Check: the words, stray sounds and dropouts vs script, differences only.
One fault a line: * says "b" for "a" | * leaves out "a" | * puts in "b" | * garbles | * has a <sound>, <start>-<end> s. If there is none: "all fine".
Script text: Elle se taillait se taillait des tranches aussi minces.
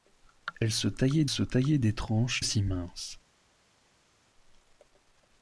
all fine